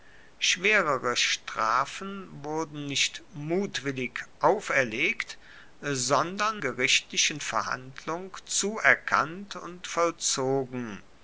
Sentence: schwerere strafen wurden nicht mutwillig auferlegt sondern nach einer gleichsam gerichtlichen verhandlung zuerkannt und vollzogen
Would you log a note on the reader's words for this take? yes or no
yes